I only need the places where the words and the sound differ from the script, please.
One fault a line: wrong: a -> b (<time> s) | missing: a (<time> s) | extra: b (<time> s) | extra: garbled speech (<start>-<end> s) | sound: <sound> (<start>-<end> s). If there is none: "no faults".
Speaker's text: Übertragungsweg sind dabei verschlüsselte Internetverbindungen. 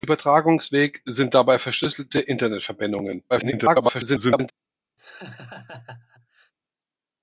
extra: garbled speech (3.3-4.5 s)
sound: laugh (5.0-6.5 s)